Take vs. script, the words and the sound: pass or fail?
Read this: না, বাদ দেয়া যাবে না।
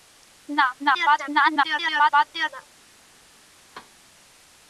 fail